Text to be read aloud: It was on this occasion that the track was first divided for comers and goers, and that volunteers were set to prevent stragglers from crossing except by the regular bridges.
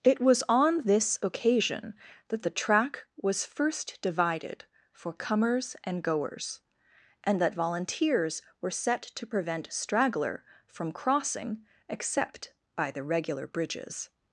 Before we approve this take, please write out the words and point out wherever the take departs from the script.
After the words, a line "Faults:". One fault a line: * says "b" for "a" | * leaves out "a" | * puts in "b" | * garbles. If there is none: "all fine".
It was on this occasion that the track was first divided for comers and goers, and that volunteers were set to prevent straggler from crossing except by the regular bridges.
Faults:
* says "straggler" for "stragglers"